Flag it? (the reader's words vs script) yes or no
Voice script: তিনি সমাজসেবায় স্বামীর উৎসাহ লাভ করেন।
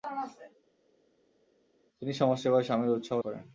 yes